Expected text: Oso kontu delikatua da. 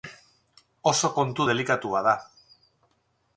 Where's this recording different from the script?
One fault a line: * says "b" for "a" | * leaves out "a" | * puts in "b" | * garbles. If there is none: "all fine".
all fine